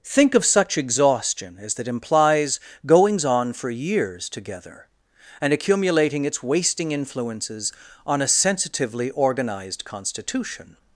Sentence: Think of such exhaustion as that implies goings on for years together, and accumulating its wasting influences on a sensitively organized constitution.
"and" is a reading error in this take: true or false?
false